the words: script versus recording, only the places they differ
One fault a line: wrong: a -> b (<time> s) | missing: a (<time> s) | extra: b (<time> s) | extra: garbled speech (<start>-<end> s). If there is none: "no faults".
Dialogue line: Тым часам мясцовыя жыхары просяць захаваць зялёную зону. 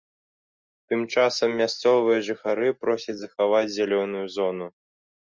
no faults